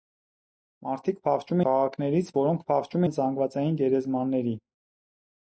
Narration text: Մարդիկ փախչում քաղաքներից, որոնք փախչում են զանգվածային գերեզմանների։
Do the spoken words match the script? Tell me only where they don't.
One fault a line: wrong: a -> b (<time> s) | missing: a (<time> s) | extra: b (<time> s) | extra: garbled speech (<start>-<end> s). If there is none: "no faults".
no faults